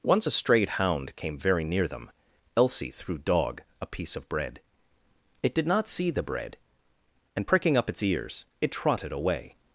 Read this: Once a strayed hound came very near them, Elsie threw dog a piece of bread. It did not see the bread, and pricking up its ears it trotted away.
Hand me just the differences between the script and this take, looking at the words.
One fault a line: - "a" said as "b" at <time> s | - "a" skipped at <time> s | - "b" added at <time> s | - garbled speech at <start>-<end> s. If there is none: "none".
none